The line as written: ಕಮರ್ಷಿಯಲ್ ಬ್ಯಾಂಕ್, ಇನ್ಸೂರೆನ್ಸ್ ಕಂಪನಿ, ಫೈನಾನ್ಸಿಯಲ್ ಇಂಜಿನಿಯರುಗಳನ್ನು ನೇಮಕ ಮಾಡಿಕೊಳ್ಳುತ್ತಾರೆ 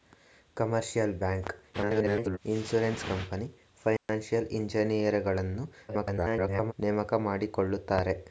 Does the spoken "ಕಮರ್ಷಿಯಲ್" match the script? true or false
true